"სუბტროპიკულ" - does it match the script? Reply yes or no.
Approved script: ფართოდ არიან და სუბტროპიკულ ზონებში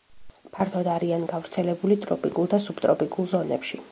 yes